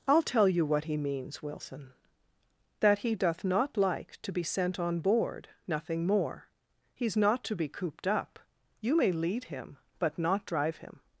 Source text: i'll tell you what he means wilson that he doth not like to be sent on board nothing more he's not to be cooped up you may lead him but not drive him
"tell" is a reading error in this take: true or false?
false